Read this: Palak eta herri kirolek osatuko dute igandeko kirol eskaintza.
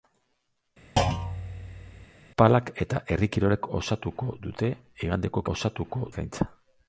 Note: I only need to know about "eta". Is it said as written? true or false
true